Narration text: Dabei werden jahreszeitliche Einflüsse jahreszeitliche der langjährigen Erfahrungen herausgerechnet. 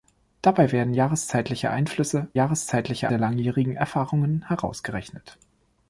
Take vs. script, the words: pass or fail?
pass